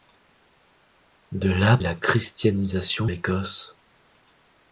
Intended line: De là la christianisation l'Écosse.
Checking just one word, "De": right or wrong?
right